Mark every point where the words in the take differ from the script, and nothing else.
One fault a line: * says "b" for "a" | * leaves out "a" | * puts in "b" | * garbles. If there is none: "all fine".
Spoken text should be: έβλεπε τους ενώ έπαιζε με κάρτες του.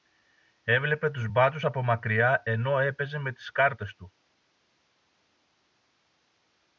* puts in "μπάτσους από μακριά"
* puts in "τις"